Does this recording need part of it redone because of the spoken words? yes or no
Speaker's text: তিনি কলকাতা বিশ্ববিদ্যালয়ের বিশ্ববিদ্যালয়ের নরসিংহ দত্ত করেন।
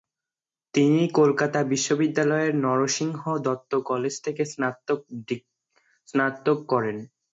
yes